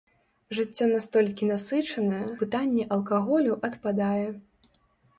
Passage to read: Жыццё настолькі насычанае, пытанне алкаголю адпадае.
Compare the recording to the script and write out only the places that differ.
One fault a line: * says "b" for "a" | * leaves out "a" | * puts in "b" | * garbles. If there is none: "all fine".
all fine